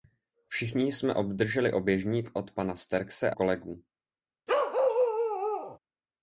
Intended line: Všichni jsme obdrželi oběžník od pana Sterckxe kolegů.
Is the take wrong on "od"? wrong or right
right